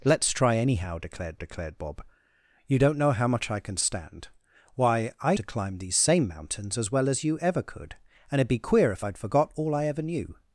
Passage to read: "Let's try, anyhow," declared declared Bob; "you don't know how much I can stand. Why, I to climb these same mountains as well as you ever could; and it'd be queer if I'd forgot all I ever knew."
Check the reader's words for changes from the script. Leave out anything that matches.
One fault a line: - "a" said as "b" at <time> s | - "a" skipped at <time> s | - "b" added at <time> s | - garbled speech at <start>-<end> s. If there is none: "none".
none